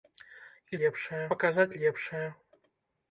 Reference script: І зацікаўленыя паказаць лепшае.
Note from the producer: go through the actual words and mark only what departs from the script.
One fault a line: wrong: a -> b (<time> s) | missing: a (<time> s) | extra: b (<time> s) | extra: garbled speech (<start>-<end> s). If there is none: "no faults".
wrong: зацікаўленыя -> лепшае (0.8 s)